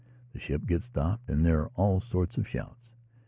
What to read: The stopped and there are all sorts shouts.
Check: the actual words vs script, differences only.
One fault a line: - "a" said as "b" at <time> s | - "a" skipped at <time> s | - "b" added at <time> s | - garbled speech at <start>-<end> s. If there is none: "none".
- "ship gets" added at 0.4 s
- "of" added at 2.4 s